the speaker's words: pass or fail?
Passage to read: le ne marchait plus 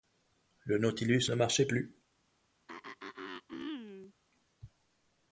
fail